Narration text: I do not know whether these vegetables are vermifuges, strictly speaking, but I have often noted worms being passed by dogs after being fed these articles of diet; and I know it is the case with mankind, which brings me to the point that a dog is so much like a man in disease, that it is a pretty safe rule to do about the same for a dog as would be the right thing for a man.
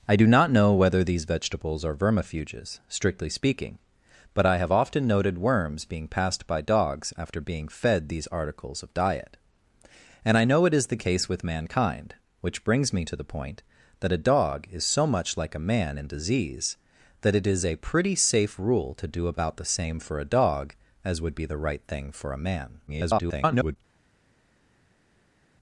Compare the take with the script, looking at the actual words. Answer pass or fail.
fail